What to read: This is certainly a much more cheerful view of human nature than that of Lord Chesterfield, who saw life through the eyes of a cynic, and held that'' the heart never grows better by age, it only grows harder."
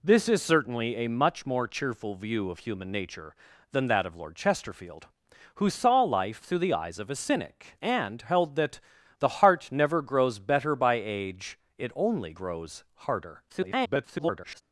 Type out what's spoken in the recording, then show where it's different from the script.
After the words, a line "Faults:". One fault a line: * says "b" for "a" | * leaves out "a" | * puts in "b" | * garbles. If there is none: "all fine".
This is certainly a much more cheerful view of human nature than that of Lord Chesterfield, who saw life through the eyes of a cynic, and held that'' the heart never grows better by age, it only grows harder." [garbled]
Faults:
* garbles